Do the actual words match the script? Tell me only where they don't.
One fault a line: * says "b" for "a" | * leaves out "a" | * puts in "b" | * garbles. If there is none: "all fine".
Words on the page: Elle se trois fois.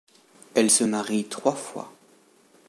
* puts in "marie"